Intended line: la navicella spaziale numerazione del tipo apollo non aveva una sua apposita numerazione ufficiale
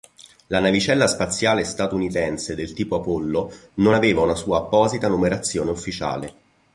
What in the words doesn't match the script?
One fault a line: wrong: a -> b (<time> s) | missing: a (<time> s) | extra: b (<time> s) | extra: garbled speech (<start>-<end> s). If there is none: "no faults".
wrong: numerazione -> statunitense (1.6 s)